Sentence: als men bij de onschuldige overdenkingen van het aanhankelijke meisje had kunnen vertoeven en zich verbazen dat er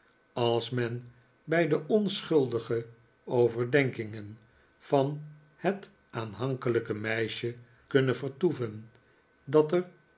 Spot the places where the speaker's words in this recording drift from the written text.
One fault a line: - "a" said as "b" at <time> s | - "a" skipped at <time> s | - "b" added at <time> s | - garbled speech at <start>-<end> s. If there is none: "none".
- "had" skipped at 7.5 s
- "en zich verbazen" skipped at 8.9 s